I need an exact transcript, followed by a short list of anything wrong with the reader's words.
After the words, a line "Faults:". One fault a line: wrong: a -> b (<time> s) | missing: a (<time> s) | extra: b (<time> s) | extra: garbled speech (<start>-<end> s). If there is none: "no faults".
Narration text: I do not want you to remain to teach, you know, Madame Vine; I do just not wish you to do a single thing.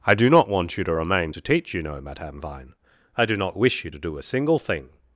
I do not want you to remain to teach, you know, Madame Vine; I do not wish you to do a single thing.
Faults:
missing: just (3.4 s)